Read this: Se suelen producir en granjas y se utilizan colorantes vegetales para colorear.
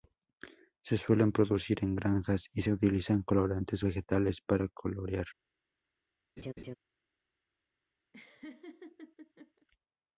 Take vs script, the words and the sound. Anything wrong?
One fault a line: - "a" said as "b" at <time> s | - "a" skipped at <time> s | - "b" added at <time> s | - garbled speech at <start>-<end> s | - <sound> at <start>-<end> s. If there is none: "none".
- laugh at 6.4-6.8 s
- laugh at 8.1-9.7 s